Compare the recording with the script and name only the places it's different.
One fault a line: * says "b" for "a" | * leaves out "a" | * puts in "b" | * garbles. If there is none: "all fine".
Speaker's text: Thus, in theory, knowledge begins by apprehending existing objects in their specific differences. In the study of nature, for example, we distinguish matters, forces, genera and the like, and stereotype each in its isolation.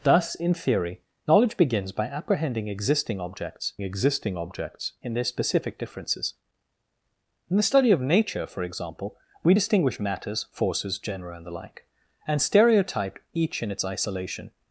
* puts in "existing objects"